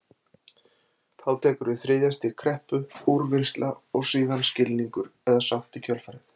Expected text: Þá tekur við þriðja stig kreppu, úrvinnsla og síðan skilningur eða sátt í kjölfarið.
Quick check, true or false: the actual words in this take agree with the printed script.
true